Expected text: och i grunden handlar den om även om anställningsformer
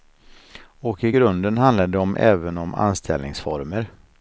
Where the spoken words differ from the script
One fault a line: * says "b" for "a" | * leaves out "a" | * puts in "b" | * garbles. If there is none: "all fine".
* says "det" for "den"